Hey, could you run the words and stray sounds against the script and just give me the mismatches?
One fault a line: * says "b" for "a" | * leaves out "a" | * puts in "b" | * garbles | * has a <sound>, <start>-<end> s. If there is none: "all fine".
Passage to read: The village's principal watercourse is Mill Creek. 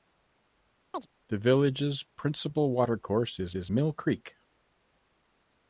* has a chirp, 0.9-1.1 s
* puts in "is"